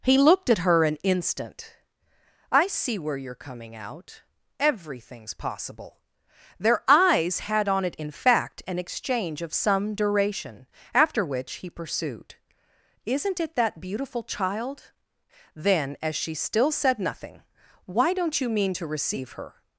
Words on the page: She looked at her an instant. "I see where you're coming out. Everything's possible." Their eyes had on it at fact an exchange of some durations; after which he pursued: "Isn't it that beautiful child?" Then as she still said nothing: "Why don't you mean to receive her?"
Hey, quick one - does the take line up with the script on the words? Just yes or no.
no